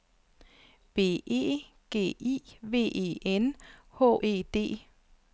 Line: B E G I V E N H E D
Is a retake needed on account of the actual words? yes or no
no